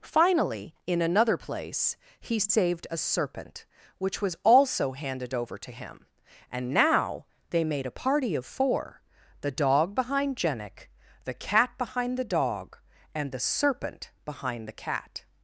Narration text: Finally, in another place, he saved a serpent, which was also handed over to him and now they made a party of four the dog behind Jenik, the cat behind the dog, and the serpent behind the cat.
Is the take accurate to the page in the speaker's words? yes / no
yes